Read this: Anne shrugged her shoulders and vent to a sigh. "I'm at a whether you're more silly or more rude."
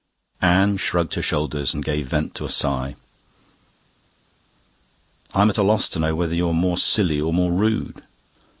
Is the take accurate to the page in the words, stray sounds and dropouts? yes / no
no